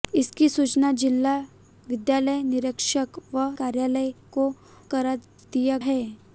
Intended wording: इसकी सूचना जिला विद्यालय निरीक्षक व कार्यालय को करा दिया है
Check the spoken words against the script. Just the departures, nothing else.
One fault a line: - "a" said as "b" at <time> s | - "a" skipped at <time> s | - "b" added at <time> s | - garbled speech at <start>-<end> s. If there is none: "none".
none